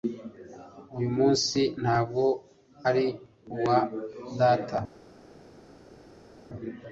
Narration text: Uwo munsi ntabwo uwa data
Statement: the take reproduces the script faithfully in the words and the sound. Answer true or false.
false